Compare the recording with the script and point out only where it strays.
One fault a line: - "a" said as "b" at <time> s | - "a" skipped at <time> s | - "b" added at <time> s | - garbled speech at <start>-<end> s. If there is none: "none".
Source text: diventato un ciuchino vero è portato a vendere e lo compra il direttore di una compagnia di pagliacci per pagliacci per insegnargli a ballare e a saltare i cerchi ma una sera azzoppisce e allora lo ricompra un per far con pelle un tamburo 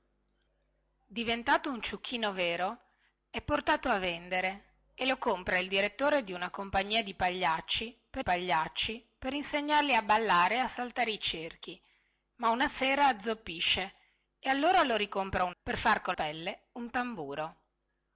none